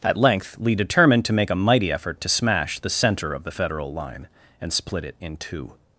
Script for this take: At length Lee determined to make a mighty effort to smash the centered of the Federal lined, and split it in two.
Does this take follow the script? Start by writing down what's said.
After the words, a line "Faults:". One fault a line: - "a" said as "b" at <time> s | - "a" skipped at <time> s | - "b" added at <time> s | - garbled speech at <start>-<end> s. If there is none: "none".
At length Lee determined to make a mighty effort to smash the center of the Federal line, and split it in two.
Faults:
- "centered" said as "center" at 2.9 s
- "lined" said as "line" at 3.9 s